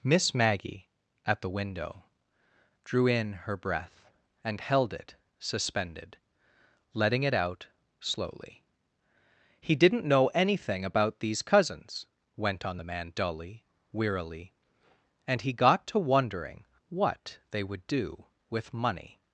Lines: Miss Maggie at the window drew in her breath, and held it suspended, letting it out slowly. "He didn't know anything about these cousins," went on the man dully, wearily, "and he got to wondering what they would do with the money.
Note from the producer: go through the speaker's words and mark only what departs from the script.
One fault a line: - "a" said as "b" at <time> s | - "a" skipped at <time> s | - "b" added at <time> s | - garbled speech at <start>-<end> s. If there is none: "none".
- "the" skipped at 18.7 s